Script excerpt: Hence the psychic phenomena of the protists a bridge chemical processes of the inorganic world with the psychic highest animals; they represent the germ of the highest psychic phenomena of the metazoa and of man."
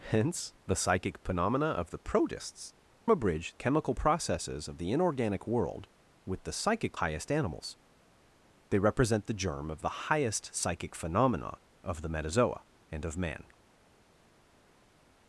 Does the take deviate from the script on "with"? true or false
false